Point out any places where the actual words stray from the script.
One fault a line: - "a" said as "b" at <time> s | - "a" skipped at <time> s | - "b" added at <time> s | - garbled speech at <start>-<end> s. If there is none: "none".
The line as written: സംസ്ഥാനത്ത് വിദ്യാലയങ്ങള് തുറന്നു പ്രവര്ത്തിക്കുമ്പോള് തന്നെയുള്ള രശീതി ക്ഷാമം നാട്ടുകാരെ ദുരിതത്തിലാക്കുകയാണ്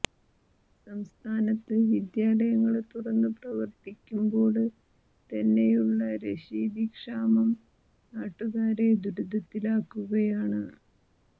none